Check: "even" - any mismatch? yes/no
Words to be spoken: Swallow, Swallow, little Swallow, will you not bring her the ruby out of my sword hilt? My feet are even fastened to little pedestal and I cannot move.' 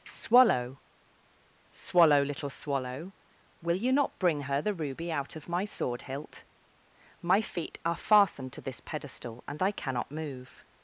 yes